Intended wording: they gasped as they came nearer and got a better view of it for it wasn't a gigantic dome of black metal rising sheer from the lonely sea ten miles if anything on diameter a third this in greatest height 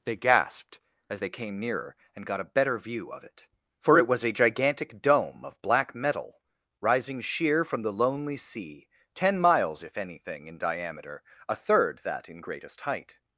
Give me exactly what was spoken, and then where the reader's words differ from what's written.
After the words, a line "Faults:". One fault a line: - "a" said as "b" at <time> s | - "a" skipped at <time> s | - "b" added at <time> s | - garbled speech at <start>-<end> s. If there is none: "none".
they gasped as they came nearer and got a better view of it for it was a gigantic dome of black metal rising sheer from the lonely sea ten miles if anything in diameter a third that in greatest height
Faults:
- "wasn't" said as "was" at 4.1 s
- "on" said as "in" at 10.5 s
- "this" said as "that" at 12.0 s